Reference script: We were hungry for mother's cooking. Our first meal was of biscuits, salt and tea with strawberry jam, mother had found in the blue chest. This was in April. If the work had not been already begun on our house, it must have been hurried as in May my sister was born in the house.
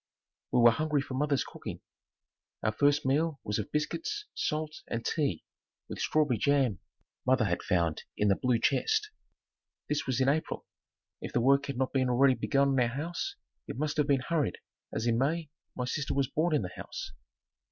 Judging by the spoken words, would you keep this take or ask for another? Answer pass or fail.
pass